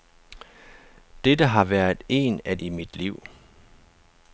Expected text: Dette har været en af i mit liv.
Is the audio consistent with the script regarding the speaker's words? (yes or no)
yes